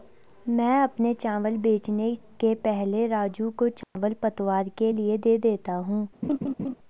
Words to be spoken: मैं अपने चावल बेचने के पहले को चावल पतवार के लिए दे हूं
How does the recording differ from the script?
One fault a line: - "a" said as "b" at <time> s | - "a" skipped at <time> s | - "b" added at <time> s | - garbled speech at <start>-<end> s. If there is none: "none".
- "राजू" added at 3.1 s
- "देता" added at 5.4 s